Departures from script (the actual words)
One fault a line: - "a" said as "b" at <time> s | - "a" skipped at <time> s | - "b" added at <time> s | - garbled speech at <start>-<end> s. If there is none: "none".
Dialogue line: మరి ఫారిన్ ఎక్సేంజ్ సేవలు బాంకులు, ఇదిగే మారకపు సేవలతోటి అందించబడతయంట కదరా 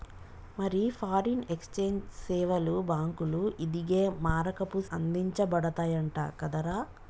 - "సేవలతోటి" skipped at 4.8 s